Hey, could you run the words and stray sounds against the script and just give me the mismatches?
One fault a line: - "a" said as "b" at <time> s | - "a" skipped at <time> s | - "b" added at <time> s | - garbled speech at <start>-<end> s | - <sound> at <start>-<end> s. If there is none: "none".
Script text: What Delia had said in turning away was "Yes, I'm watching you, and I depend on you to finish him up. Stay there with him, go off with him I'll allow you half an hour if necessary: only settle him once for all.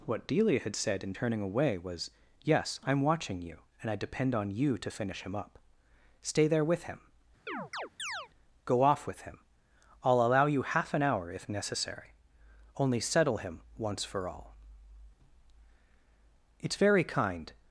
- chirp at 7.5-8.3 s
- "It's very kind" added at 16.6 s